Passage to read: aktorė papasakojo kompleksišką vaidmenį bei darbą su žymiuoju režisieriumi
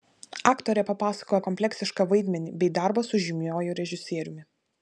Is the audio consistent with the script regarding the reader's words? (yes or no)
yes